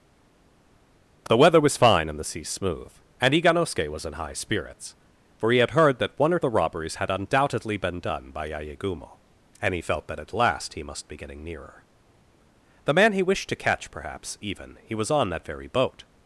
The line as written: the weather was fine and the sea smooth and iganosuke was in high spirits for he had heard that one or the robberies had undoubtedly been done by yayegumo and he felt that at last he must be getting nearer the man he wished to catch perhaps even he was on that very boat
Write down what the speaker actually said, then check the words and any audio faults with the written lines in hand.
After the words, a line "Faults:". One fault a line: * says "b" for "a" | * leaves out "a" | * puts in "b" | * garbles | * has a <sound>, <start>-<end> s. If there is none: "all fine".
the weather was fine and the sea smooth and iganosuke was in high spirits for he had heard that one or the robberies had undoubtedly been done by yayegumo and he felt that at last he must be getting nearer the man he wished to catch perhaps even he was on that very boat
Faults:
all fine